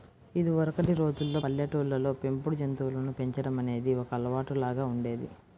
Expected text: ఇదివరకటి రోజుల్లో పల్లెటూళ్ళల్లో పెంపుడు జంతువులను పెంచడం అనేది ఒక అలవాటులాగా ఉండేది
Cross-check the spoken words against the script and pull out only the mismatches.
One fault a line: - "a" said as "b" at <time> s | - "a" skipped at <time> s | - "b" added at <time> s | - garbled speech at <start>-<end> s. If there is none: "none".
none